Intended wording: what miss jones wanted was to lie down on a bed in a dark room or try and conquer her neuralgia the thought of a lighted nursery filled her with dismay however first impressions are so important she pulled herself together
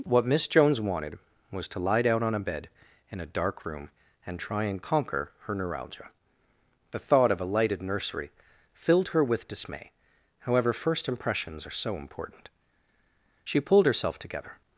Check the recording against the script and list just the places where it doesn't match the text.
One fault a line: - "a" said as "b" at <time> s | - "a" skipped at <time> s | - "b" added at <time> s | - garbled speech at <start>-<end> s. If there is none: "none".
- "or" said as "and" at 4.2 s